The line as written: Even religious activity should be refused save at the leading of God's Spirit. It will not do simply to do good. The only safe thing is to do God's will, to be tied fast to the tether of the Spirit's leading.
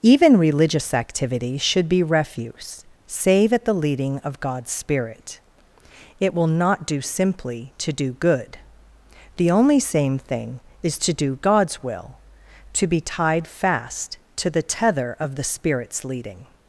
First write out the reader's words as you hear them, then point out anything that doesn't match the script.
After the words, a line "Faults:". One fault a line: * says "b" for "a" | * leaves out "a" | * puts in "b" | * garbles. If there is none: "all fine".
Even religious activity should be refuse save at the leading of God's Spirit. It will not do simply to do good. The only same thing is to do God's will, to be tied fast to the tether of the Spirit's leading.
Faults:
* says "refuse" for "refused"
* says "same" for "safe"